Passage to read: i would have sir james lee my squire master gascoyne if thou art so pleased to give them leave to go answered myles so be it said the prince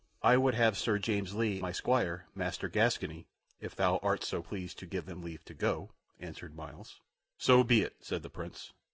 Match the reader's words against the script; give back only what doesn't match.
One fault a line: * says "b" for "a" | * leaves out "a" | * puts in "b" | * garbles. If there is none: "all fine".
all fine